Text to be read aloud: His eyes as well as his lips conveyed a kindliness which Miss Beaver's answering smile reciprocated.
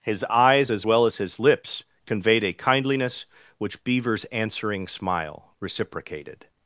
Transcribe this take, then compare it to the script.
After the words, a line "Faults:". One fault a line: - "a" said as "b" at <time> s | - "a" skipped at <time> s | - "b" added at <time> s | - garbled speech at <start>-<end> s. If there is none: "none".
His eyes as well as his lips conveyed a kindliness which Beaver's answering smile reciprocated.
Faults:
- "Miss" skipped at 3.8 s